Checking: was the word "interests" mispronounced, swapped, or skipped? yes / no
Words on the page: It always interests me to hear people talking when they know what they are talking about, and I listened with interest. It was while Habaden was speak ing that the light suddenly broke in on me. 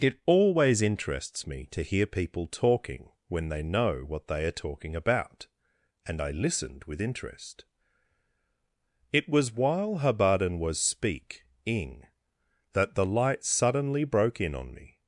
no